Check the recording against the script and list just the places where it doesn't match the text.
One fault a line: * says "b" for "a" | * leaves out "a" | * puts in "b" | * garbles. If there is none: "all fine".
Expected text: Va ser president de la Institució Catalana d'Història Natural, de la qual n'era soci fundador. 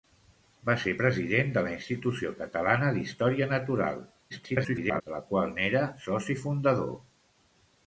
* garbles